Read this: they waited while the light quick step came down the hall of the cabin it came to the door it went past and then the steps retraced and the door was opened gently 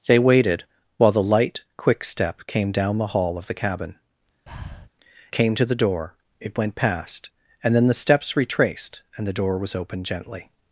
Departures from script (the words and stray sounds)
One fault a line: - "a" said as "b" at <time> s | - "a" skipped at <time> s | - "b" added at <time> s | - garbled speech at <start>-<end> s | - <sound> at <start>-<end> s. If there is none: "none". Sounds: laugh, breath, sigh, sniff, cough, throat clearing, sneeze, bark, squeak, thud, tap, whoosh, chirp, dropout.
- "it" skipped at 4.0 s
- breath at 4.5-4.9 s